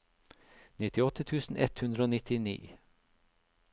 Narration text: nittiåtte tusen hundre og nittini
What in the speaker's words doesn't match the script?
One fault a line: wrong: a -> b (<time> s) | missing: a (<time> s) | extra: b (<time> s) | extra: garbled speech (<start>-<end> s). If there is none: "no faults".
extra: ett (1.6 s)